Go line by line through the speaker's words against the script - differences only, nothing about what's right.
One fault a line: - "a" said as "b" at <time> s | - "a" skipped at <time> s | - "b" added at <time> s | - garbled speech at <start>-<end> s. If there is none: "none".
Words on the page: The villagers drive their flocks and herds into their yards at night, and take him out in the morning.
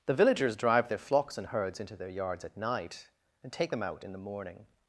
- "him" said as "them" at 3.7 s